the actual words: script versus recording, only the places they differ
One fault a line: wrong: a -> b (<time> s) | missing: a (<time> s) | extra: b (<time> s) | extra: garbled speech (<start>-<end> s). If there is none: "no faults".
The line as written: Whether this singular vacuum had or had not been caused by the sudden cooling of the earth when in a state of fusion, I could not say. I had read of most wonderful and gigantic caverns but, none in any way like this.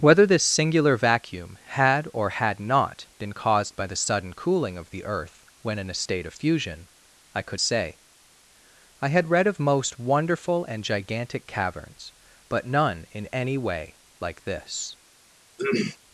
missing: not (7.6 s)